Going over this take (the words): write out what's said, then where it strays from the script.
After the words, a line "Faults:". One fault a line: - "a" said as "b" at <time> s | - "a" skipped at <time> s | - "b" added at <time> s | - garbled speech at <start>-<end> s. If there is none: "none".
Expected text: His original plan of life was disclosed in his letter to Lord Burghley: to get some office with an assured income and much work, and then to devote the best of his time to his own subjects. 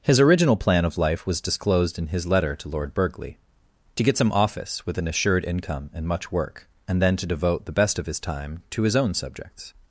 His original plan of life was disclosed in his letter to Lord Burghley: to get some office with an assured income and much work, and then to devote the best of his time to his own subjects.
Faults:
none